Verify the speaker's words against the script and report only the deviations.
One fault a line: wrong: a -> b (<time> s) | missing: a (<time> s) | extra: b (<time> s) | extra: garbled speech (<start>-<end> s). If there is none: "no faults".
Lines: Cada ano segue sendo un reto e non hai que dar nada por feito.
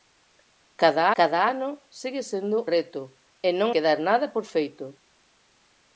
extra: cada (1.2 s)
missing: un (2.6 s)
missing: hai (3.7 s)